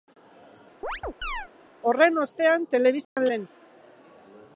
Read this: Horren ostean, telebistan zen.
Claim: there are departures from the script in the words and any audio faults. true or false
true